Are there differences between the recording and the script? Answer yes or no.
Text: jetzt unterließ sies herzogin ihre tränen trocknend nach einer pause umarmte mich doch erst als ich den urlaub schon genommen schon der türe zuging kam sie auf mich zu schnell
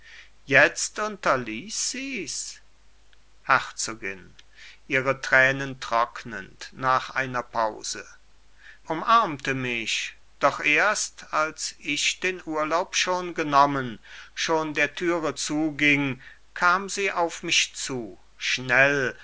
no